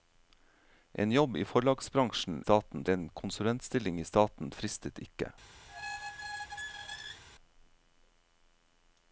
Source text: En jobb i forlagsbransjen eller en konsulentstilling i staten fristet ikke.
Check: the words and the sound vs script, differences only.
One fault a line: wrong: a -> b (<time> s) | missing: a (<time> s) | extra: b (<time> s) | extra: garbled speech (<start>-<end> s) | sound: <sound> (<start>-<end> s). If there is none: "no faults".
wrong: eller -> staten (2.4 s)
sound: squeak (5.7-7.2 s)